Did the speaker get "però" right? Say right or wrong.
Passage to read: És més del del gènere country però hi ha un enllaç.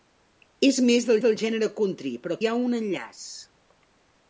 right